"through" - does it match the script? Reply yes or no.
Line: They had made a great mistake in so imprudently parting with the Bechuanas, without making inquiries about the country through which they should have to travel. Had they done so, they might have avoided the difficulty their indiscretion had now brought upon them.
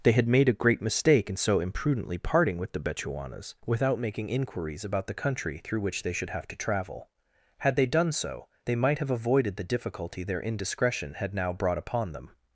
yes